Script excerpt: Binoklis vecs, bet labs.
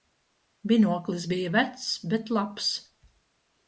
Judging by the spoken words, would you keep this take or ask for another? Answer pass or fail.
fail